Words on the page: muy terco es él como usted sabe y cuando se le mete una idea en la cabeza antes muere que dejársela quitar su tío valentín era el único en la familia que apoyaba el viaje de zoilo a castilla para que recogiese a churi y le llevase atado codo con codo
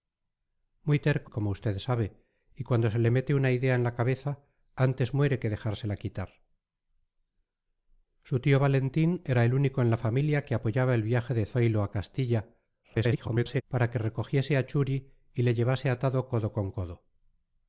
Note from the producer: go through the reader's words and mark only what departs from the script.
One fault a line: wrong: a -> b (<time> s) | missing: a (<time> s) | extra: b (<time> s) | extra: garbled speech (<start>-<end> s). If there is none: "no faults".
missing: es él (1.3 s)
extra: garbled speech (12.8-13.6 s)